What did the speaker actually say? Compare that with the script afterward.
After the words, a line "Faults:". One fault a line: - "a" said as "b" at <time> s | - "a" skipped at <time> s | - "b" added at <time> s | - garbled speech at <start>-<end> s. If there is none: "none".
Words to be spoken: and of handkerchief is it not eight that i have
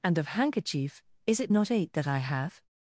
and of handkerchief is it not eight that i have
Faults:
none